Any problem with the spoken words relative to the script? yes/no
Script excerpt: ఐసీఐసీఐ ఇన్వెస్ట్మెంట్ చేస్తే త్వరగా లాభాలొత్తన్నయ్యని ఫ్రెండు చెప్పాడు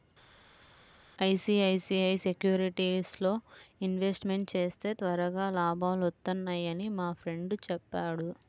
yes